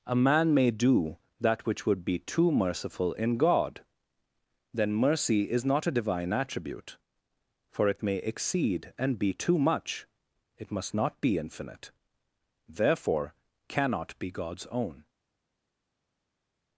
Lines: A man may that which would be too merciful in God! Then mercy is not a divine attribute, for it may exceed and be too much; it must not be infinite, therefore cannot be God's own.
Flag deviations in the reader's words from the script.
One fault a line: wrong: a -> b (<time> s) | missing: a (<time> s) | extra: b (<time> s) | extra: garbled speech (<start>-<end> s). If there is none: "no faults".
extra: do (0.7 s)